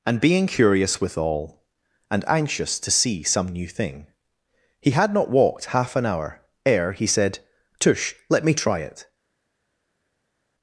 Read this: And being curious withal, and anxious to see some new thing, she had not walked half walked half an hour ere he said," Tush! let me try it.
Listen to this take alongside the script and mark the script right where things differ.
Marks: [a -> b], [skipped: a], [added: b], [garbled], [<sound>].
And being curious withal, and anxious to see some new thing, [she -> he] had not walked half [skipped: walked half] an hour ere he said," Tush! let me try it.